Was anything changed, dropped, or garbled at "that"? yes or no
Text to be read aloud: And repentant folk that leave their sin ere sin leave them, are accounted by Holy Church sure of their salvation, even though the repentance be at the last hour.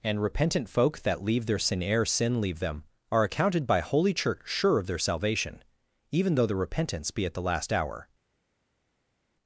no